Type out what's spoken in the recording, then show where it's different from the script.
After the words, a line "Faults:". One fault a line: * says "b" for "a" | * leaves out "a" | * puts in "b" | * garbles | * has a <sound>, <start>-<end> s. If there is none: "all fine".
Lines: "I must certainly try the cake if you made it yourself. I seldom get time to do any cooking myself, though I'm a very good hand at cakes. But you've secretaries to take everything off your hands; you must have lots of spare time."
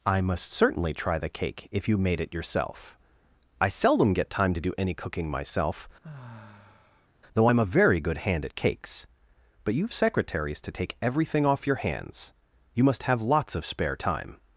"I must certainly try the cake if you made it yourself. I seldom get time to do any cooking myself, though I'm a very good hand at cakes. But you've secretaries to take everything off your hands; you must have lots of spare time."
Faults:
* has a sigh, 6.0-7.1 s